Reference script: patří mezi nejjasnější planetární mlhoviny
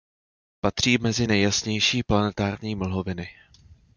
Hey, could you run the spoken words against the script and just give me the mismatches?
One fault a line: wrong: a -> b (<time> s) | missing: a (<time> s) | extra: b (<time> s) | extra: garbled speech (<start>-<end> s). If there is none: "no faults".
no faults